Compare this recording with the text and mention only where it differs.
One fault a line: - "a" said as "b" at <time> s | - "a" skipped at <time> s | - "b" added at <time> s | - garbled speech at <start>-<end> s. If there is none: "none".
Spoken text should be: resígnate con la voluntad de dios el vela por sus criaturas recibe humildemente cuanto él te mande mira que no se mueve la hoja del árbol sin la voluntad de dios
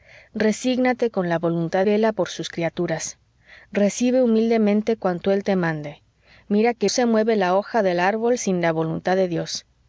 - "de dios el" skipped at 1.9 s
- "no" skipped at 6.9 s